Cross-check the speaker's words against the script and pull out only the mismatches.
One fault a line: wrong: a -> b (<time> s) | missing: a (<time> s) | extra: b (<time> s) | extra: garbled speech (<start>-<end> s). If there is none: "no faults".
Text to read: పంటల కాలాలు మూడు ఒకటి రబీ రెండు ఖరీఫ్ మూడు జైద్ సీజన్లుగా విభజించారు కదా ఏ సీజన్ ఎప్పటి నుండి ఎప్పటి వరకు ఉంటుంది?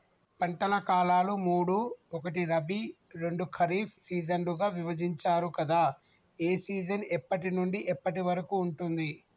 missing: మూడు జైద్ (4.0 s)